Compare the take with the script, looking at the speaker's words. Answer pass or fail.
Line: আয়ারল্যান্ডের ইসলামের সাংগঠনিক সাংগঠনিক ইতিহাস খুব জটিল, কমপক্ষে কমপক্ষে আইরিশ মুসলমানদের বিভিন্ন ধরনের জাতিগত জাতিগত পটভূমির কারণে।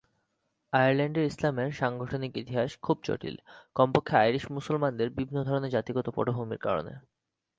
fail